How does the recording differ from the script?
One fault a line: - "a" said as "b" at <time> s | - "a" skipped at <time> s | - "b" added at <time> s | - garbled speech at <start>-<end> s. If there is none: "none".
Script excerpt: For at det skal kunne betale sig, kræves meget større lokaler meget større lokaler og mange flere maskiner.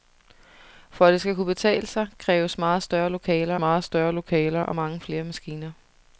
none